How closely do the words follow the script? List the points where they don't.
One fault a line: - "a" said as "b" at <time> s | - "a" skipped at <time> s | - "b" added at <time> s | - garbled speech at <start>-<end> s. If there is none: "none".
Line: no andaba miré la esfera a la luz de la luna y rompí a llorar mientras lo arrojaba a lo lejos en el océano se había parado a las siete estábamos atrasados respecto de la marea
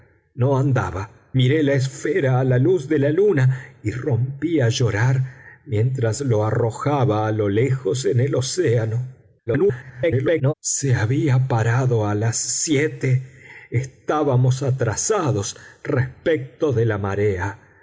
- garbled speech at 9.5-10.5 s